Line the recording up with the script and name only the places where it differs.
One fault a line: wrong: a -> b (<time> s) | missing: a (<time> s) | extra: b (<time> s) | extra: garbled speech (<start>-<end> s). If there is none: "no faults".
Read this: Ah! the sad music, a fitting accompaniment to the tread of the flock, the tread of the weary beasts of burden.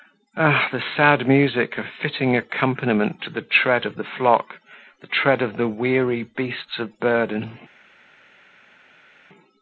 no faults